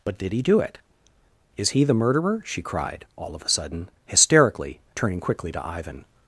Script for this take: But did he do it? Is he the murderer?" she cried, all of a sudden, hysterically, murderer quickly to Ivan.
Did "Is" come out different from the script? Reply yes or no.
no